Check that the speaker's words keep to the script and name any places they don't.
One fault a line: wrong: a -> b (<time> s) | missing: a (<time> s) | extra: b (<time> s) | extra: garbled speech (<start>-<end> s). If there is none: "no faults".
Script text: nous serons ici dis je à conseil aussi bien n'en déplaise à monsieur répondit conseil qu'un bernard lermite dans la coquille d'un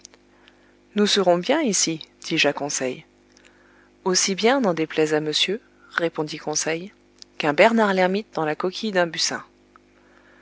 extra: bien (1.4 s)